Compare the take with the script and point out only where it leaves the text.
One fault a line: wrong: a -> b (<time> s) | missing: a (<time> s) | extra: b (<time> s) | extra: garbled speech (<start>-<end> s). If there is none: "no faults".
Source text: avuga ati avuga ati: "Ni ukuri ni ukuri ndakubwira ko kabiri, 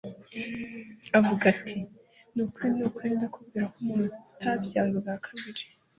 missing: avuga ati (1.8 s)
extra: umuntu utabyawe ubwa (3.8 s)